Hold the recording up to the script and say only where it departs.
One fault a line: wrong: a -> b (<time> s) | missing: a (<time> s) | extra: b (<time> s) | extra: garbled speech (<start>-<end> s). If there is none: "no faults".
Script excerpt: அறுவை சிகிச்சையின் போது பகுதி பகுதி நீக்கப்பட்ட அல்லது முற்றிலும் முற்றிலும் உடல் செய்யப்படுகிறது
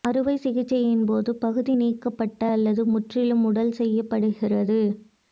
missing: பகுதி (1.7 s)
missing: முற்றிலும் (3.4 s)